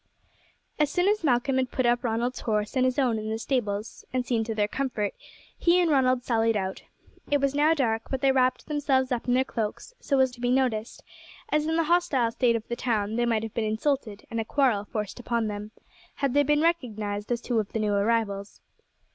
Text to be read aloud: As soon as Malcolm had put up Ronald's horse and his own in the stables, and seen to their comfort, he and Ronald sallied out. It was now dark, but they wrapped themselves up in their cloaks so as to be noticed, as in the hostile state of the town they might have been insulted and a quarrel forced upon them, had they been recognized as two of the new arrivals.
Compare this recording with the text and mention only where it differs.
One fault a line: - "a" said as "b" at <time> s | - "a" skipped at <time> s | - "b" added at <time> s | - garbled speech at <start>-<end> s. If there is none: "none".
none